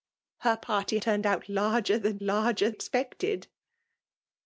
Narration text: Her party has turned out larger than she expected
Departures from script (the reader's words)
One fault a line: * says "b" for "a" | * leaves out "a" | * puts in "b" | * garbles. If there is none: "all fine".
* leaves out "has"
* says "larger" for "she"